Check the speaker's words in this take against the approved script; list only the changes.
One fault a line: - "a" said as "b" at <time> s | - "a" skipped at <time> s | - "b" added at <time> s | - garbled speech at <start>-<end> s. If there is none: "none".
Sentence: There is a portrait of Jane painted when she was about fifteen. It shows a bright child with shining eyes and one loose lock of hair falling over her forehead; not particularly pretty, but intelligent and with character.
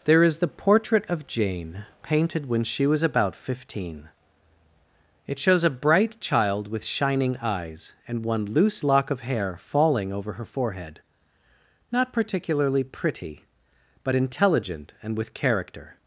- "a" said as "the" at 0.4 s